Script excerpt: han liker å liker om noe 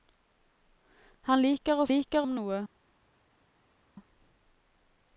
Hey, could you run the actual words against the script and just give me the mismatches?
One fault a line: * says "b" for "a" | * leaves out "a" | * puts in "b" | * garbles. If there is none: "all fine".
all fine